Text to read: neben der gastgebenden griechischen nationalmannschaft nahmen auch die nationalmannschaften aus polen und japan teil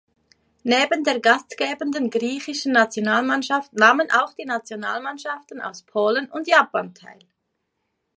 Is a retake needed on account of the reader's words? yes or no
no